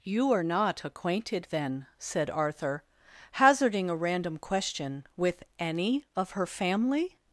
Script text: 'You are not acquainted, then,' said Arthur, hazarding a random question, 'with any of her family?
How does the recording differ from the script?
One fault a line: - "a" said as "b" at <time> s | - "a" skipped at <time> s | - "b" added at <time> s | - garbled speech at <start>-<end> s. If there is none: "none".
none